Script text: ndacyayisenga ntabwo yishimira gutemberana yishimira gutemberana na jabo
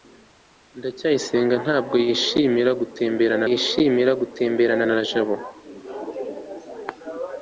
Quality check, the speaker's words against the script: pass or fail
pass